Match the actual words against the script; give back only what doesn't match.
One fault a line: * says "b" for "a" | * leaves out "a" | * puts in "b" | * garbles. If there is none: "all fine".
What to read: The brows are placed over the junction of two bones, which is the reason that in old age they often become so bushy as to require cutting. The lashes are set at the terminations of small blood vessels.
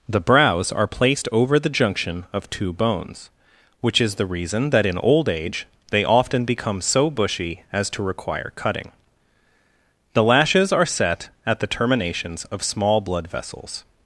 all fine